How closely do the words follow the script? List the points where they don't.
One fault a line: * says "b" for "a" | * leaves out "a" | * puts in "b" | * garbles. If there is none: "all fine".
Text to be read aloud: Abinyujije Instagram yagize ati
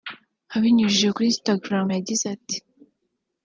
* puts in "kuri"